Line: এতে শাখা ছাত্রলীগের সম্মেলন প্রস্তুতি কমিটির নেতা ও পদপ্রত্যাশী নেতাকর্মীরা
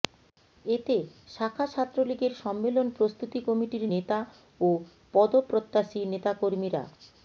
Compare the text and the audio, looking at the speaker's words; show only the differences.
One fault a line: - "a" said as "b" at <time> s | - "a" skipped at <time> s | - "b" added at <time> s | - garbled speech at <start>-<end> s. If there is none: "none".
none